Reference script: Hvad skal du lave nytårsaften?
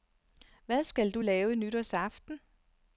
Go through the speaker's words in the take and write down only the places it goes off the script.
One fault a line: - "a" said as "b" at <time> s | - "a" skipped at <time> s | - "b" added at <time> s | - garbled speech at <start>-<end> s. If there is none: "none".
none